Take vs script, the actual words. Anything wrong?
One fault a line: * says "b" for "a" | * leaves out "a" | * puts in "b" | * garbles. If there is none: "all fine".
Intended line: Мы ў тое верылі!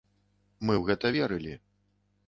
* says "гэта" for "тое"